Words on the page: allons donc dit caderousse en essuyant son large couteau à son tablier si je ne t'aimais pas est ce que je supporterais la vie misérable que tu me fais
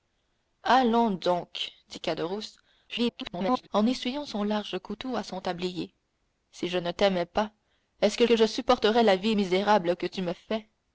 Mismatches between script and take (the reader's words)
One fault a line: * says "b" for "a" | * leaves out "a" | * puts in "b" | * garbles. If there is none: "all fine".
* garbles
* puts in "que"